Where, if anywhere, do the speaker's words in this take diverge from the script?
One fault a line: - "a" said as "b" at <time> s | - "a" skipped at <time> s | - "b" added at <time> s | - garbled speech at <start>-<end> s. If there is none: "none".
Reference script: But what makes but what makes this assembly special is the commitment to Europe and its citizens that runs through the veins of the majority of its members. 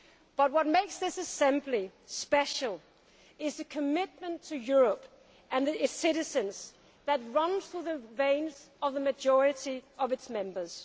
- "but what makes" skipped at 1.0 s